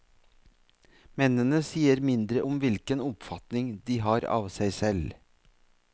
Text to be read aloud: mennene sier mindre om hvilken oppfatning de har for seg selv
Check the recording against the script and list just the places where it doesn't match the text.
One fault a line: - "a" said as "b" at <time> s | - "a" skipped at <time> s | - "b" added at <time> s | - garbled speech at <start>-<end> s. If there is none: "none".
- "for" said as "av" at 4.4 s